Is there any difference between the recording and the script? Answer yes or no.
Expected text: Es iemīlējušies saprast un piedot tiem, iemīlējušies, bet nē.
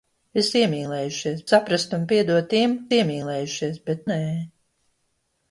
no